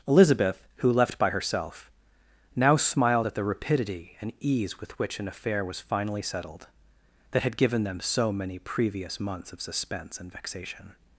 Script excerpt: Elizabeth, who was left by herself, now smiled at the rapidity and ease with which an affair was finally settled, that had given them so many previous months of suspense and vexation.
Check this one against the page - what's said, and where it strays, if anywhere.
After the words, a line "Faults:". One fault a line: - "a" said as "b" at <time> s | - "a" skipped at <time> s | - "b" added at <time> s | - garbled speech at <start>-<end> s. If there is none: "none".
Elizabeth, who left by herself, now smiled at the rapidity and ease with which an affair was finally settled, that had given them so many previous months of suspense and vexation.
Faults:
- "was" skipped at 0.9 s